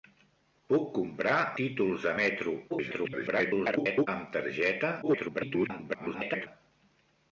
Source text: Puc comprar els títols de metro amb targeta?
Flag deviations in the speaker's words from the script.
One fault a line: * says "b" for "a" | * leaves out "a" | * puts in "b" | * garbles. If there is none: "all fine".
* leaves out "els"
* garbles
* garbles